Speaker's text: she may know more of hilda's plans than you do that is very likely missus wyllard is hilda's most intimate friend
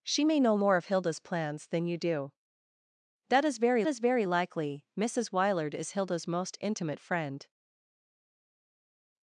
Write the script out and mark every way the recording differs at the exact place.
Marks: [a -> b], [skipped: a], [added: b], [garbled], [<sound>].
she may know more of hilda's plans than you do that is very [added: is very] likely missus wyllard is hilda's most intimate friend